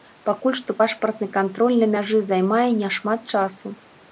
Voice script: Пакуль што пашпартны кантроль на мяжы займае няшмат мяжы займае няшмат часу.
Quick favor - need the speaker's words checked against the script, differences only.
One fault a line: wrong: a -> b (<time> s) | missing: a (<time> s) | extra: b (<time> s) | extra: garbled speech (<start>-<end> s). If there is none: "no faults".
missing: мяжы займае няшмат (3.2 s)